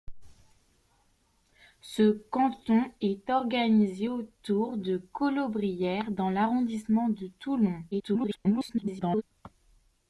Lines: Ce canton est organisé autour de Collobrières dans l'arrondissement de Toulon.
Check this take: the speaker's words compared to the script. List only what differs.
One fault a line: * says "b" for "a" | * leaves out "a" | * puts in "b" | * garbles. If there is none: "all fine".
* garbles